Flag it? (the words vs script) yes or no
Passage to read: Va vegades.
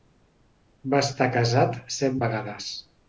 yes